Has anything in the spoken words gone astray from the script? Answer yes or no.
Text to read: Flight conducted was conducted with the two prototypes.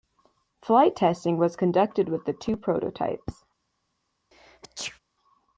yes